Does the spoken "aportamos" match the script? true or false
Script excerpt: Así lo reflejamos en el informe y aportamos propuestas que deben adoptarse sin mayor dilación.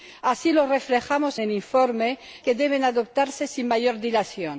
false